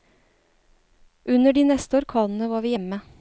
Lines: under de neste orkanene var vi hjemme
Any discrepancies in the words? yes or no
no